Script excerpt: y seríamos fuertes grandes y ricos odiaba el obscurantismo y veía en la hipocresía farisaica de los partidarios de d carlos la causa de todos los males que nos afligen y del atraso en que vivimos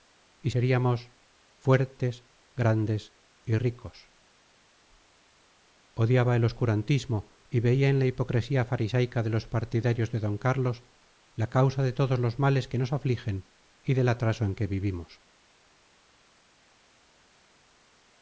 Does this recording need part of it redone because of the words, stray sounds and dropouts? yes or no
no